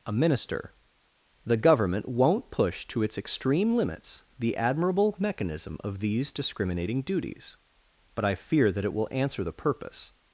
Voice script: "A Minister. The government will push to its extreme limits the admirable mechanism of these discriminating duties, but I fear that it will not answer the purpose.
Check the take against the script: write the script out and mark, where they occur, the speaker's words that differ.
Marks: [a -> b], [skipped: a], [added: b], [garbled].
"A Minister. The government [will -> won't] push to its extreme limits the admirable mechanism of these discriminating duties, but I fear that it will [skipped: not] answer the purpose.